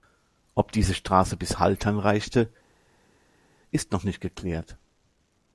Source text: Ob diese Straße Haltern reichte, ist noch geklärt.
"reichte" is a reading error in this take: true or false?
false